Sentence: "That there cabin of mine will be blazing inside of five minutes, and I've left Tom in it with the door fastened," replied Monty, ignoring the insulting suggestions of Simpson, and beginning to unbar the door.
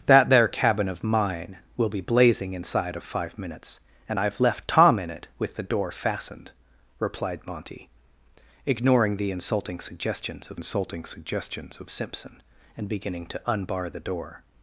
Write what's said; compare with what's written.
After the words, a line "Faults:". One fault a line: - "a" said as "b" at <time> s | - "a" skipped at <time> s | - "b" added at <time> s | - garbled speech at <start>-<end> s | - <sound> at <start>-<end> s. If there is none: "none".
"That there cabin of mine will be blazing inside of five minutes, and I've left Tom in it with the door fastened," replied Monty, ignoring the insulting suggestions of insulting suggestions of Simpson, and beginning to unbar the door.
Faults:
- "insulting suggestions of" added at 10.5 s